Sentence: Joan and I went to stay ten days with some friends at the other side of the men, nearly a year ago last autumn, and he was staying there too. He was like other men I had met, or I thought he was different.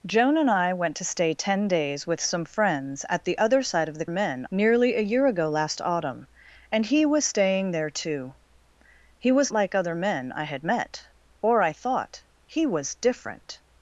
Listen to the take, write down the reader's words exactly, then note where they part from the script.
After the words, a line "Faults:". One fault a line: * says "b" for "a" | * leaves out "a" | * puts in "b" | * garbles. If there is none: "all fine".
Joan and I went to stay ten days with some friends at the other side of the men, nearly a year ago last autumn, and he was staying there too. He was like other men I had met, or I thought he was different.
Faults:
all fine